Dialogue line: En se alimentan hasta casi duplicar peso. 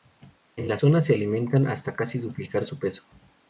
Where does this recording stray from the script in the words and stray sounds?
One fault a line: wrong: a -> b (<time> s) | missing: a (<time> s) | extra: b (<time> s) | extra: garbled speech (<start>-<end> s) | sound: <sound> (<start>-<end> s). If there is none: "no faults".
extra: la zona (0.7 s)
extra: su (2.6 s)